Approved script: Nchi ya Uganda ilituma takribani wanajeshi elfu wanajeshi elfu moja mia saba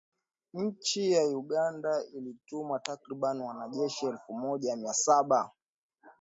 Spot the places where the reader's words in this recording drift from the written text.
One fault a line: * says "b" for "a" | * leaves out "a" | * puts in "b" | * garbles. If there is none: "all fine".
* leaves out "wanajeshi elfu"